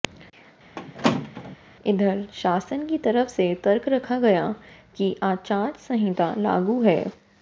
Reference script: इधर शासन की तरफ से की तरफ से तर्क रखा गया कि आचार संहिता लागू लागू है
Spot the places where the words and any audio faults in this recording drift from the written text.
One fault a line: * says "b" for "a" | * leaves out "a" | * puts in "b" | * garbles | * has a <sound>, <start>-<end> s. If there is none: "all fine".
* has a squeak, 0.8-1.6 s
* leaves out "की तरफ से"
* leaves out "लागू"